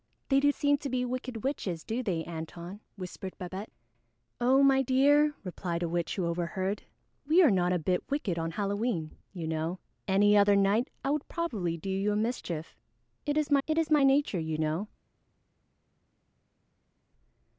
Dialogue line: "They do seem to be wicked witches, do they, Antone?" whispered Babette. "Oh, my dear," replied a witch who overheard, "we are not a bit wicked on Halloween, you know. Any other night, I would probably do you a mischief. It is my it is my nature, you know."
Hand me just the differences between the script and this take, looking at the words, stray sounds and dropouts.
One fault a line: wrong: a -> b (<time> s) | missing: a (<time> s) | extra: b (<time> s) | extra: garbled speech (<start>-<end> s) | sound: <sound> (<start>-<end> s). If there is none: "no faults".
no faults